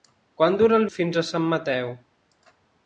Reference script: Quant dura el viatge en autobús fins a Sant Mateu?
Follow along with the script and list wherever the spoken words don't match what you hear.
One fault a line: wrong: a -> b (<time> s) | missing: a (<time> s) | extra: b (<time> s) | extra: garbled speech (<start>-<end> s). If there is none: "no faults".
missing: viatge en autobús (0.8 s)